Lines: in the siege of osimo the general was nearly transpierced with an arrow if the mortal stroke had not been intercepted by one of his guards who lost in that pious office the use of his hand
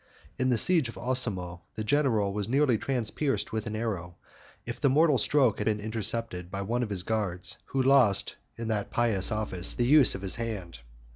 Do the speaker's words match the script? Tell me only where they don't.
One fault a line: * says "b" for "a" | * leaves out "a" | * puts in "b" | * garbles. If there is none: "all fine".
* leaves out "not"